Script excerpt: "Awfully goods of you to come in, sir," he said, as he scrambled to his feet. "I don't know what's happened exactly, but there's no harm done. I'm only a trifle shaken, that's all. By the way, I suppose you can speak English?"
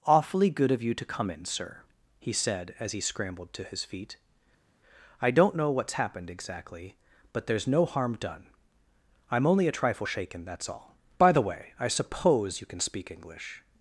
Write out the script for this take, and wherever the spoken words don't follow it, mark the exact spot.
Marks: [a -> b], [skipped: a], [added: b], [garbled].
"Awfully [goods -> good] of you to come in, sir," he said, as he scrambled to his feet. "I don't know what's happened exactly, but there's no harm done. I'm only a trifle shaken, that's all. By the way, I suppose you can speak English?"